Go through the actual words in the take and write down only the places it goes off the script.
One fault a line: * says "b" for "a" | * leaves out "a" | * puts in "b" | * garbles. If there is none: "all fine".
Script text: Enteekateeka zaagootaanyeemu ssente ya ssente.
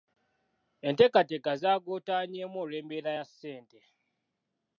* says "olw'embeera" for "ssente"